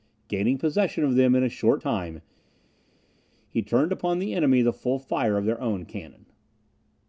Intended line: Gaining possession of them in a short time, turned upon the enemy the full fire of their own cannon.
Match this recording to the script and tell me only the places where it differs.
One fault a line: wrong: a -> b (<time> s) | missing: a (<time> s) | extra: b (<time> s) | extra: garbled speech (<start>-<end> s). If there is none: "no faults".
extra: he (3.5 s)